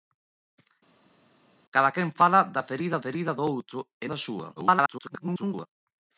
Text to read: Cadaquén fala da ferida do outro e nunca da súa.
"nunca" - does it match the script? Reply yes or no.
no